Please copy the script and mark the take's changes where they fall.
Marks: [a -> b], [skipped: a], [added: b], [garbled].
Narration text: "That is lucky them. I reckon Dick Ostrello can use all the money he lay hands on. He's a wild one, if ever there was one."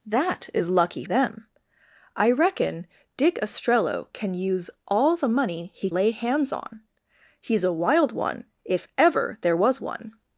"That is lucky them. I reckon Dick Ostrello can use all the money he lay hands on. He's a wild one, if ever there was one."